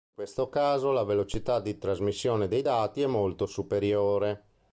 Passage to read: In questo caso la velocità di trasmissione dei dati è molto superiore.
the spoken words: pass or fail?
pass